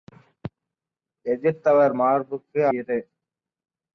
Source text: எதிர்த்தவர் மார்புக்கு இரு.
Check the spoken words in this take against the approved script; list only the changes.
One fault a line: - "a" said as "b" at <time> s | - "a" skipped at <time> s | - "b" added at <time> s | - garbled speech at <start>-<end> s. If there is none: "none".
none